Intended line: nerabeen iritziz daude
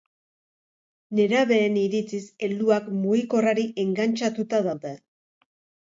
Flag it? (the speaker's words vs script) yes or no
yes